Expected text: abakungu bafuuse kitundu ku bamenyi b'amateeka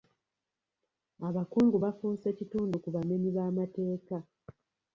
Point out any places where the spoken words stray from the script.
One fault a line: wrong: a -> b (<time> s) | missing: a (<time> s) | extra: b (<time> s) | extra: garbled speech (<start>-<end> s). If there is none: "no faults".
no faults